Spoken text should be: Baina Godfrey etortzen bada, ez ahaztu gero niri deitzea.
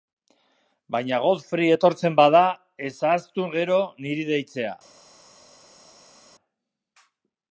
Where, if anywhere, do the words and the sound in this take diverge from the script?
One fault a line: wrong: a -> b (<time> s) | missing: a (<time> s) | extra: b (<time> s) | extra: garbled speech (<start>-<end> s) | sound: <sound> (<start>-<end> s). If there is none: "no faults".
no faults